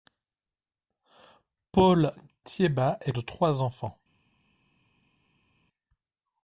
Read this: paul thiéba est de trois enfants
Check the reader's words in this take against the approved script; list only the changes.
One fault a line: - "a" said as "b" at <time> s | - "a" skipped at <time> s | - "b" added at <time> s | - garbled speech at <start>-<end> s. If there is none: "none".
none